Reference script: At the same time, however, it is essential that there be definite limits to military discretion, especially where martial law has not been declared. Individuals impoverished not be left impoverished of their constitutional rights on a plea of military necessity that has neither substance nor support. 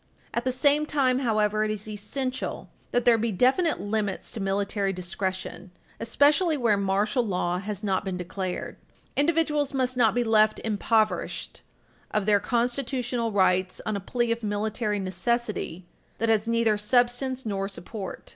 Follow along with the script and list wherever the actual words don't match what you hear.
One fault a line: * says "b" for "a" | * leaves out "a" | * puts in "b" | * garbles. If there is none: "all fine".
* says "must" for "impoverished"